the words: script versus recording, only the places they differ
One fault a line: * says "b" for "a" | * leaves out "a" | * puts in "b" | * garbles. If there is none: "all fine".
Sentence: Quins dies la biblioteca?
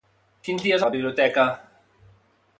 all fine